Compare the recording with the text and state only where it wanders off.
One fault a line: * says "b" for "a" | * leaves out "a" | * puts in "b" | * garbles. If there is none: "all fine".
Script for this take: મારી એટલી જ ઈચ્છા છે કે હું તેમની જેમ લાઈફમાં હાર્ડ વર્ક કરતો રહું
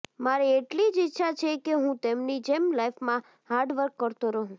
all fine